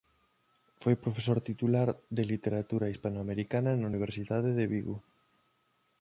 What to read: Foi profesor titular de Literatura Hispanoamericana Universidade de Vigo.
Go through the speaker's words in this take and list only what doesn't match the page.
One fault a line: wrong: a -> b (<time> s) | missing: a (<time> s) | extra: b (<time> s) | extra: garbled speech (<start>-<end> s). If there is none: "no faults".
extra: na (3.8 s)